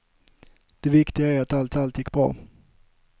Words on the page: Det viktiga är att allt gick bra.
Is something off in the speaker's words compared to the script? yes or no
yes